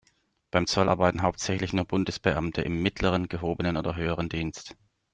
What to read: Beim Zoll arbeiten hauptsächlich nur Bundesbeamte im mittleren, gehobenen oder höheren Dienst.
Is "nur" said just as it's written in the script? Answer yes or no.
yes